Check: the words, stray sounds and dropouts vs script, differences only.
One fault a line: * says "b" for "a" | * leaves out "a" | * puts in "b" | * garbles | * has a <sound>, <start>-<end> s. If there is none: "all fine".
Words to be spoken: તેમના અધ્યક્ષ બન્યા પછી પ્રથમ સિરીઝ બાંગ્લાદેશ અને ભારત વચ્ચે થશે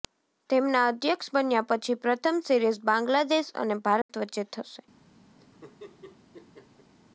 * has a dropout, 4.0-4.1 s
* has a laugh, 5.4-6.9 s